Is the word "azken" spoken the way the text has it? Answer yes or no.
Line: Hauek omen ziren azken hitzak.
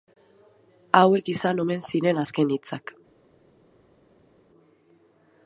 yes